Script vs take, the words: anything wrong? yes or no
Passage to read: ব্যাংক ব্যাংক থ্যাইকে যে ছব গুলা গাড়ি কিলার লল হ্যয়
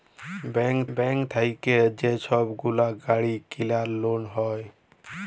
no